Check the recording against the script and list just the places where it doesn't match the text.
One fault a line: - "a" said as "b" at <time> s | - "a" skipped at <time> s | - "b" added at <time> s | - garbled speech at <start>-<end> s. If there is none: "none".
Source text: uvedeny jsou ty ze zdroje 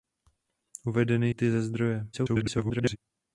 - "jsou" skipped at 1.3 s
- garbled speech at 2.1-3.0 s